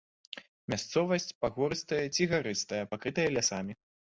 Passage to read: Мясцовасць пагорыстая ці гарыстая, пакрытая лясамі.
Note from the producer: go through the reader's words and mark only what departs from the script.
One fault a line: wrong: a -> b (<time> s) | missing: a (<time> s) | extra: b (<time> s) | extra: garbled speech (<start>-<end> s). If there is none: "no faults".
no faults